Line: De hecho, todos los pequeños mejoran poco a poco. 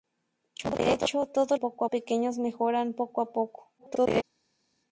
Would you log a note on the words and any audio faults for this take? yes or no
yes